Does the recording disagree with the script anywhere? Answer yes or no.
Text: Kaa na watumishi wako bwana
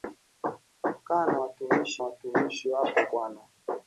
yes